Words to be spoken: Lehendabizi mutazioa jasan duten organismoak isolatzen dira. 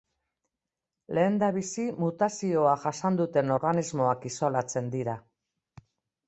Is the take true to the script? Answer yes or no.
yes